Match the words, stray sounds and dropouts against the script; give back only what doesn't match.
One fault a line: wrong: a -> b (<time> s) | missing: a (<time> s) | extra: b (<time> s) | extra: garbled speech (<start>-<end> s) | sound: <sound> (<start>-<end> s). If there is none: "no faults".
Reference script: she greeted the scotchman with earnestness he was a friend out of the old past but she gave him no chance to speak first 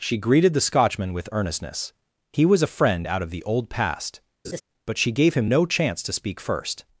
sound: laugh (4.4-4.6 s)